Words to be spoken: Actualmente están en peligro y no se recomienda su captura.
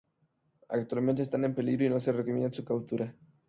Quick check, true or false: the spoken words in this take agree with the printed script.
true